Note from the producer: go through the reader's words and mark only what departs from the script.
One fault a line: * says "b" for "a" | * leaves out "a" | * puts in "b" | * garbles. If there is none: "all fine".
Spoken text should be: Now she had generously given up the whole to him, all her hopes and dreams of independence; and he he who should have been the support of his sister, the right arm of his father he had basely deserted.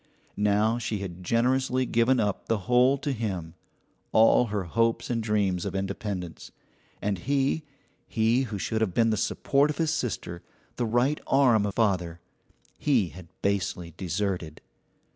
* leaves out "his"